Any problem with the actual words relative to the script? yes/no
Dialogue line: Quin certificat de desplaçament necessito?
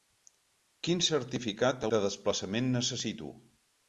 no